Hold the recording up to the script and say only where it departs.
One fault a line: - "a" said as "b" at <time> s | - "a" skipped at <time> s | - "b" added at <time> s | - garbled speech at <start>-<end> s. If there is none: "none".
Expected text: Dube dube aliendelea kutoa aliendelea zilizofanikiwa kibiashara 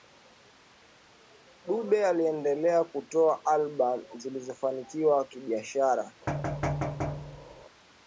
- "dube" skipped at 2.0 s
- "aliendelea" said as "albamu" at 3.5 s